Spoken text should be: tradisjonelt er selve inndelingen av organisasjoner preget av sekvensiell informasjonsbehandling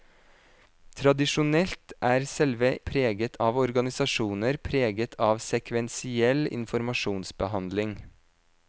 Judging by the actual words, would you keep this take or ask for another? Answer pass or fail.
fail